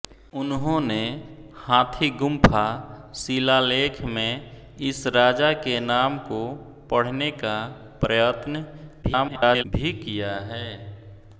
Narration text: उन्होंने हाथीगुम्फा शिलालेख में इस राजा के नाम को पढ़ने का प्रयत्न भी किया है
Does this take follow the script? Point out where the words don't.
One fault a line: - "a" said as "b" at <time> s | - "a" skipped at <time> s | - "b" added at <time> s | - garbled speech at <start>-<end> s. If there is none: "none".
- garbled speech at 9.0-9.6 s